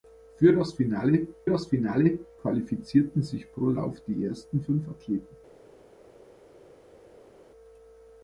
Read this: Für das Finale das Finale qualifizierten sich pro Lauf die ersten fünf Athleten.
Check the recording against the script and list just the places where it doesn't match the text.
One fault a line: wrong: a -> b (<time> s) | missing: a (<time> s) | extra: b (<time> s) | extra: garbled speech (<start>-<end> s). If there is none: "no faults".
no faults